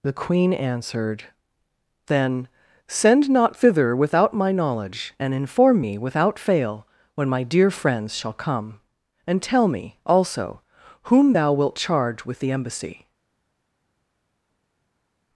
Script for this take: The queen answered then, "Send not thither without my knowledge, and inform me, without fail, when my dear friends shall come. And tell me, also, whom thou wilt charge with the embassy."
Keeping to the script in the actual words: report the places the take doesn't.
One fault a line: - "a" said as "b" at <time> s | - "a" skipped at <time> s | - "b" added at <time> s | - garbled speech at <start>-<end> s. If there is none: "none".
none